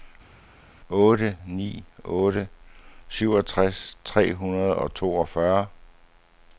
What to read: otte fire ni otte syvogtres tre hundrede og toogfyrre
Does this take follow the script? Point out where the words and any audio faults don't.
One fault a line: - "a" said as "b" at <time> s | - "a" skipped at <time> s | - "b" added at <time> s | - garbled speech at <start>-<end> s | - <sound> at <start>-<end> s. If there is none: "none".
- "fire" skipped at 1.4 s